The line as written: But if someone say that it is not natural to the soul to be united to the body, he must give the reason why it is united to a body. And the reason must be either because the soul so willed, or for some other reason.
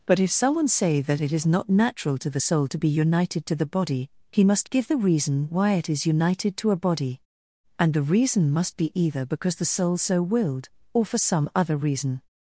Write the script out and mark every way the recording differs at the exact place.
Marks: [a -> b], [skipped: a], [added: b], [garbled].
But if someone say that it is not natural to the soul to be united to the body, he must give the reason why it is united to a body. And the reason must be either because the soul so willed, or for some other reason.